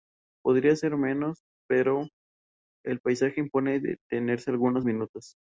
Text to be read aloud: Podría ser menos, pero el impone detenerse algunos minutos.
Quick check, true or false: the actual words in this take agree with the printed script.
false